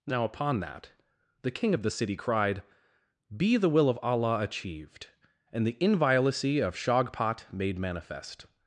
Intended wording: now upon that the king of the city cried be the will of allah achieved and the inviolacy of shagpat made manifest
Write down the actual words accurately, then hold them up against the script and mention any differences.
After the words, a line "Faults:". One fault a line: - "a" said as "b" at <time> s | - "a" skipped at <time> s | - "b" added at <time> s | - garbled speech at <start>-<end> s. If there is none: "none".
now upon that the king of the city cried be the will of allah achieved and the inviolacy of shagpat made manifest
Faults:
none